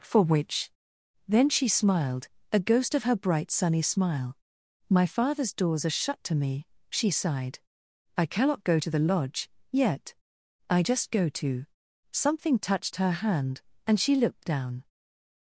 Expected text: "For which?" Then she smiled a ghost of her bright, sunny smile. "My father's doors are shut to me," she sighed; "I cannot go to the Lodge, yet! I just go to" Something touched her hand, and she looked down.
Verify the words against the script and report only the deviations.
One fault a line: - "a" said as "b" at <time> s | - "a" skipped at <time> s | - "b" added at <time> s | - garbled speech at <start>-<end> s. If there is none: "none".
none